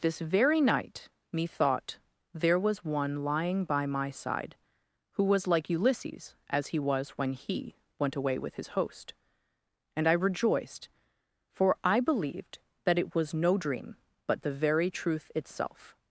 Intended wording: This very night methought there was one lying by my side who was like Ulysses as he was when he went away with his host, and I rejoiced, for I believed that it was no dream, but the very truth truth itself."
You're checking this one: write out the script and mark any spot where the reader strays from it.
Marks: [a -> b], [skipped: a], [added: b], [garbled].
This very night methought there was one lying by my side who was like Ulysses as he was when he went away with his host, and I rejoiced, for I believed that it was no dream, but the very truth [skipped: truth] itself."